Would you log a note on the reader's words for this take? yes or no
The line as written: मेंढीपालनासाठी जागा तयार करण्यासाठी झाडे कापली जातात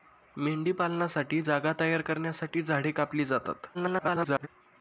yes